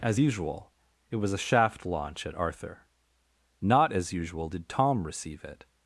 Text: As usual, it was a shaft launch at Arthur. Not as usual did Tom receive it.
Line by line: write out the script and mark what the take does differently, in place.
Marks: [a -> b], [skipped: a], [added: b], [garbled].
As usual, it was a shaft launch at Arthur. Not as usual did Tom receive it.